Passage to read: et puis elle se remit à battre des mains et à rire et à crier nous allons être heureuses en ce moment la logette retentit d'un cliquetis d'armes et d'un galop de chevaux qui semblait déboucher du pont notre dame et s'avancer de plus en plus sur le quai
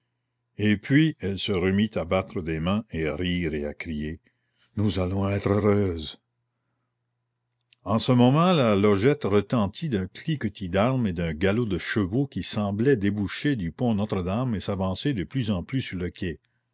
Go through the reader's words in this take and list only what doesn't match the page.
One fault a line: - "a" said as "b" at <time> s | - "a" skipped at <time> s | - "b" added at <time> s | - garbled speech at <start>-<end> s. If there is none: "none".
none